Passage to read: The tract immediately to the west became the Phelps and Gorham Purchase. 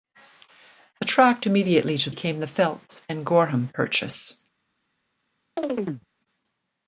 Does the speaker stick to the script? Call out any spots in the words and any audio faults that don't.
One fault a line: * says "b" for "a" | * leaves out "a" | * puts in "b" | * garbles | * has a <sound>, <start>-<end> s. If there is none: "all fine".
* leaves out "the west"
* has a chirp, 5.6-6.1 s